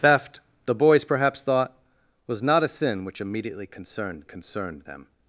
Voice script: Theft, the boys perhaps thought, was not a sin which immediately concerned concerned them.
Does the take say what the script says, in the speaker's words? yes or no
yes